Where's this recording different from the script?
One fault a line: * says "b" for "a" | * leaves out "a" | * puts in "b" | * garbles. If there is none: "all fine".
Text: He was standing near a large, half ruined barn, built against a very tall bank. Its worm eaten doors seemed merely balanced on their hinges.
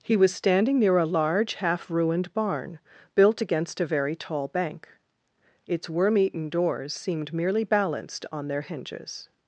all fine